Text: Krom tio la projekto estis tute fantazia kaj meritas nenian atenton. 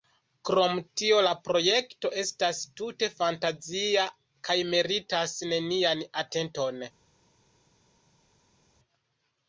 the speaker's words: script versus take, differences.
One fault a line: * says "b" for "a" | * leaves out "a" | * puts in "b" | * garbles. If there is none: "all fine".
* says "estas" for "estis"